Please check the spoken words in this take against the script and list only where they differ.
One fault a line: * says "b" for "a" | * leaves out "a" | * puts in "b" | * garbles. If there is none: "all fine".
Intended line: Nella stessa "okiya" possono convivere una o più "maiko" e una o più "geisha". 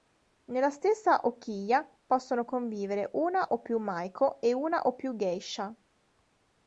all fine